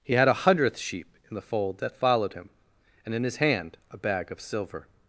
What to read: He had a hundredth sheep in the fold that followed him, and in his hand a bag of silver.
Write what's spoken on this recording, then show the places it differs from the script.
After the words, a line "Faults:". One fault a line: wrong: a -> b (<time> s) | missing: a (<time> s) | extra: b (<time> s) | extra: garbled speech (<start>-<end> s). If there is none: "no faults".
He had a hundredth sheep in the fold that followed him, and in his hand a bag of silver.
Faults:
no faults